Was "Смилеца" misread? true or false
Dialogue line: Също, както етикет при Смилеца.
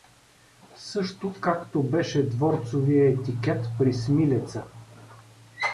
false